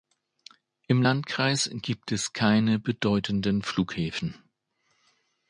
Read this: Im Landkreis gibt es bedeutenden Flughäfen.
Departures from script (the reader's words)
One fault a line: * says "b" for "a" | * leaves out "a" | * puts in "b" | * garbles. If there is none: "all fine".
* puts in "keine"